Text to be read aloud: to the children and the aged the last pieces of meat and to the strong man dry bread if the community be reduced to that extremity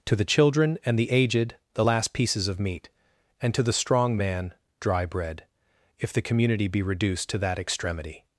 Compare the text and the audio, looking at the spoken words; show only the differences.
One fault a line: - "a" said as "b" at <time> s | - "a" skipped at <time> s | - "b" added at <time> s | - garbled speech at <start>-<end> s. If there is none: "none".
none